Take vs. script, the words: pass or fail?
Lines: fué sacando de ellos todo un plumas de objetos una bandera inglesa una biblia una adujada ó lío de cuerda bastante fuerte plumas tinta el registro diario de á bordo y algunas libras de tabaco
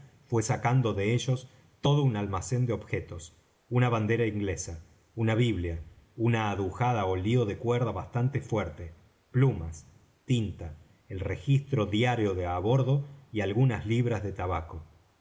fail